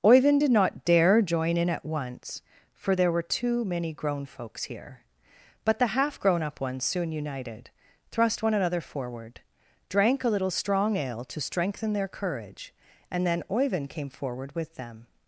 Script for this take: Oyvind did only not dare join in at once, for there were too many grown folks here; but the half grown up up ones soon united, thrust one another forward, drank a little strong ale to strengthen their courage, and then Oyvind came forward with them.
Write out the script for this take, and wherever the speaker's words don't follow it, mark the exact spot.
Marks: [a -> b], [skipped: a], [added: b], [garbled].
Oyvind did [skipped: only] not dare join in at once, for there were too many grown folks here; but the half grown up [skipped: up] ones soon united, thrust one another forward, drank a little strong ale to strengthen their courage, and then Oyvind came forward with them.